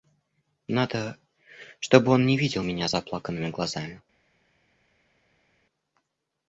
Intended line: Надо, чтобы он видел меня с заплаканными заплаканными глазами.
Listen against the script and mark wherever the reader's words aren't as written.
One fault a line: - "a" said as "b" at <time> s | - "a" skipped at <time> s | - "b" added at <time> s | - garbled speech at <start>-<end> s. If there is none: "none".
- "не" added at 2.2 s
- "заплаканными" skipped at 3.5 s